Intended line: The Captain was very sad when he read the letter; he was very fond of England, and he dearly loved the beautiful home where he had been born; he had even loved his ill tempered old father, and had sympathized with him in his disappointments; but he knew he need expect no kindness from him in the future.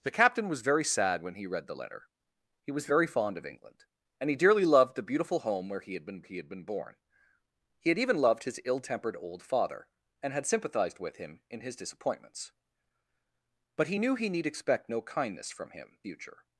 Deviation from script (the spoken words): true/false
true